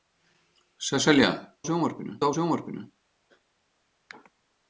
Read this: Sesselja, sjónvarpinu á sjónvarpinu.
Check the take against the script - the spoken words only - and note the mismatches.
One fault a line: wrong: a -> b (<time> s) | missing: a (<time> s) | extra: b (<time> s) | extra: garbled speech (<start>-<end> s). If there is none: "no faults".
no faults